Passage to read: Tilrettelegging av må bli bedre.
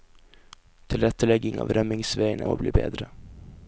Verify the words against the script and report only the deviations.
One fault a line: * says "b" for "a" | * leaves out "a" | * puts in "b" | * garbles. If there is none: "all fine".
* puts in "rømningsveiene"